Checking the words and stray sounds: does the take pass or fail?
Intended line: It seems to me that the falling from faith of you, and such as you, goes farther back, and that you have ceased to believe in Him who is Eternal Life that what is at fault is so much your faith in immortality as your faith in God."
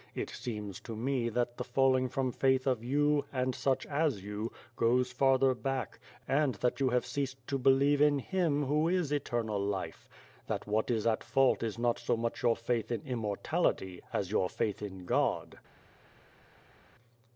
fail